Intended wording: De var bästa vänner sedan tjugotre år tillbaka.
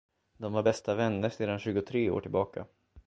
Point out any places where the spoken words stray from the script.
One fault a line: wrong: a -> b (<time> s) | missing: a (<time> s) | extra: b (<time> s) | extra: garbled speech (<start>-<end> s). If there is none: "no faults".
no faults